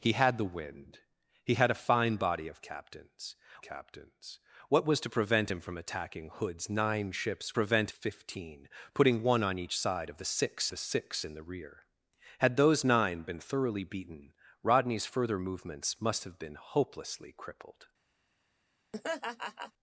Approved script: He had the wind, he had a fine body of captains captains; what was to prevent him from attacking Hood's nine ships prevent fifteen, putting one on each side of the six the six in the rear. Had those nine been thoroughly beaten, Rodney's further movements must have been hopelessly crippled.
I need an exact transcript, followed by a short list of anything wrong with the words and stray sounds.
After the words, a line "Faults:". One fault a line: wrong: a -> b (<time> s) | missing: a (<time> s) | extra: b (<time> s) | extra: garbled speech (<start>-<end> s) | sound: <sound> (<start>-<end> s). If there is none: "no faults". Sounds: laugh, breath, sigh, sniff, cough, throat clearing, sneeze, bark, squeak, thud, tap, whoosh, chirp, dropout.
He had the wind, he had a fine body of captains captains; what was to prevent him from attacking Hood's nine ships prevent fifteen, putting one on each side of the six the six in the rear. Had those nine been thoroughly beaten, Rodney's further movements must have been hopelessly crippled.
Faults:
sound: laugh (18.9-19.7 s)